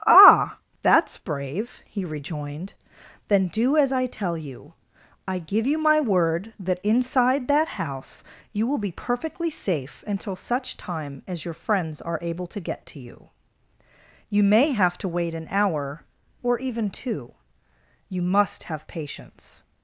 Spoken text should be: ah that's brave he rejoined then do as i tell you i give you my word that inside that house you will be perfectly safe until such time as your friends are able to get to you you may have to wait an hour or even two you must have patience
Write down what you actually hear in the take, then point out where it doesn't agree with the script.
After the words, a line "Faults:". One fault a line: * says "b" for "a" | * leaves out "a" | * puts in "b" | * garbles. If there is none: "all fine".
ah that's brave he rejoined then do as i tell you i give you my word that inside that house you will be perfectly safe until such time as your friends are able to get to you you may have to wait an hour or even two you must have patience
Faults:
all fine